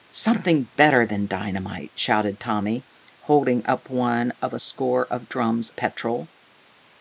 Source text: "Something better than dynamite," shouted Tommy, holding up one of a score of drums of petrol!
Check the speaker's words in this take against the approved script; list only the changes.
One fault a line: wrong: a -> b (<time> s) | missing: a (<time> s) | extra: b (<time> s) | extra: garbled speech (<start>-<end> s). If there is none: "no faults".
missing: of (5.7 s)